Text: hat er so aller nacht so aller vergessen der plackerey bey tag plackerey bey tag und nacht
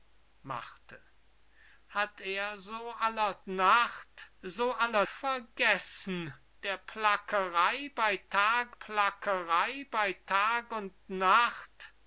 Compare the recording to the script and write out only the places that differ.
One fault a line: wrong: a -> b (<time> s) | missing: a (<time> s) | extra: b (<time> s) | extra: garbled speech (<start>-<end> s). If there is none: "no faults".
no faults